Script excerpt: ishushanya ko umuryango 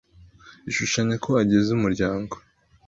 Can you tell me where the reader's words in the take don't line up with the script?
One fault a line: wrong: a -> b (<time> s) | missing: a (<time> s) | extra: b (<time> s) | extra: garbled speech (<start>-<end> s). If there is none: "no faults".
extra: agize (1.4 s)